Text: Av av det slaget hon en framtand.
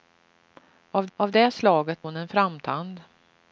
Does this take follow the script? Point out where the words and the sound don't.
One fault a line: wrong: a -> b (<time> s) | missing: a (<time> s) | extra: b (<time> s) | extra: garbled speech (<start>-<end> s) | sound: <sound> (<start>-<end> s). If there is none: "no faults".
no faults